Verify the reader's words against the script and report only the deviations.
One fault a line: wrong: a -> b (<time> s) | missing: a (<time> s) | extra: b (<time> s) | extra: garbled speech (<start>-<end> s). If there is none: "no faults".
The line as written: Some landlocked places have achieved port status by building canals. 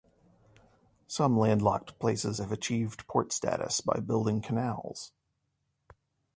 no faults